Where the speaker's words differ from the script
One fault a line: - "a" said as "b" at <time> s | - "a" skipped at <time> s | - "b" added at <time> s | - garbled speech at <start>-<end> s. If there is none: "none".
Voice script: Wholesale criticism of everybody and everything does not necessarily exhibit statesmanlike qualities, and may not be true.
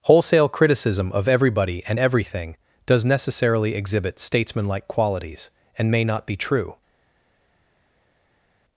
- "not" skipped at 3.0 s